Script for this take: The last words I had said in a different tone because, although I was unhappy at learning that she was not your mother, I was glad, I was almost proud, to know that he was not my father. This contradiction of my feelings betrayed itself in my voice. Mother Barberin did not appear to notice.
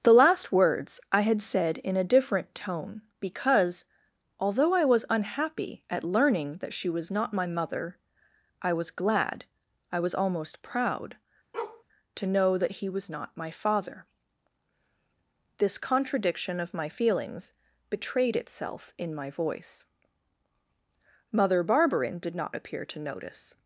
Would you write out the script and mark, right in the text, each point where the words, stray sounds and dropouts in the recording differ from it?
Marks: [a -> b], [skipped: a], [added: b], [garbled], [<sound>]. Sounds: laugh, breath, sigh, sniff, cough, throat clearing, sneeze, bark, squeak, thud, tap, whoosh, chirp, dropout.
The last words I had said in a different tone because, although I was unhappy at learning that she was not [your -> my] mother, I was glad, I was almost proud, [bark] to know that he was not my father. This contradiction of my feelings betrayed itself in my voice. Mother Barberin did not appear to notice.